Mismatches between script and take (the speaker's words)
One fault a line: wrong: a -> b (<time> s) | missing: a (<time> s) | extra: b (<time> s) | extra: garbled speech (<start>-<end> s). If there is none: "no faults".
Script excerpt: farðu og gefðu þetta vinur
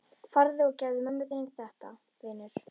extra: mömmu þinni (1.1 s)